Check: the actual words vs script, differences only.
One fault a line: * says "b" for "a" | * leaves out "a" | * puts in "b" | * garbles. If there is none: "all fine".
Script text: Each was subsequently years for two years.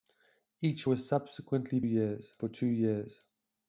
all fine